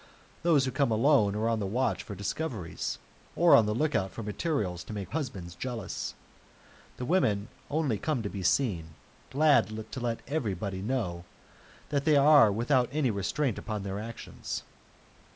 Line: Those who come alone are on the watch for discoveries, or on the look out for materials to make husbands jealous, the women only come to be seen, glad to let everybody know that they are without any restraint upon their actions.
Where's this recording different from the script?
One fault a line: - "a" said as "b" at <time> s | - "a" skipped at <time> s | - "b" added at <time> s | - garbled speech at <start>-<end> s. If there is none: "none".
none